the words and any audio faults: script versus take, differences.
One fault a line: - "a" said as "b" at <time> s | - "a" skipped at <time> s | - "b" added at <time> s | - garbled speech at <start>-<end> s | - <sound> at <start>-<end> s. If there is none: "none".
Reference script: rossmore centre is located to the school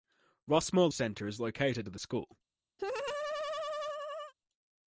- laugh at 2.8-4.3 s